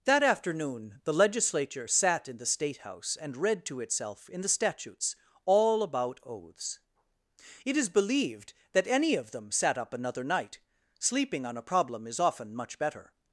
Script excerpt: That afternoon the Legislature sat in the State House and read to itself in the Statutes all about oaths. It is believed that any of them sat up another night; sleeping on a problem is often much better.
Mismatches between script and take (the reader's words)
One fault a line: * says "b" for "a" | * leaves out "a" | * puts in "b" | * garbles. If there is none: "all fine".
all fine